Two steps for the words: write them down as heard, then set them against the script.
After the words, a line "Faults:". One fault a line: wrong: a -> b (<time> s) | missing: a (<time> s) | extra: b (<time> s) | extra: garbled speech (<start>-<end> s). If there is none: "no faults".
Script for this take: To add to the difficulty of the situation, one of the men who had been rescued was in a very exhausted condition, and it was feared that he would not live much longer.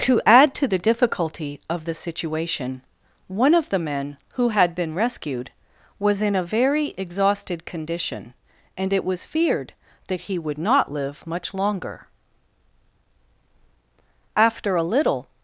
To add to the difficulty of the situation, one of the men who had been rescued was in a very exhausted condition, and it was feared that he would not live much longer. After a little
Faults:
extra: After a little (14.4 s)